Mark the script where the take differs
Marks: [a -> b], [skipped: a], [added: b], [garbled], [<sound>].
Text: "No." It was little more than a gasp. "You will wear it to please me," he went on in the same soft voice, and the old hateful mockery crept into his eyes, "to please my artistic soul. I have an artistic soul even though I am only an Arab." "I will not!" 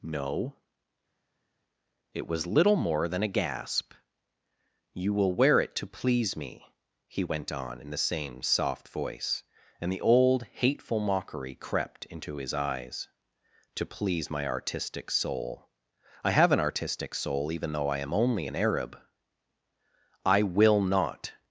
"No." It was little more than a gasp. "You will wear it to please me," he went on in the same soft voice, and the old hateful mockery crept into his eyes, "to please my artistic soul. I have an artistic soul even though I am only an Arab." "I will not!"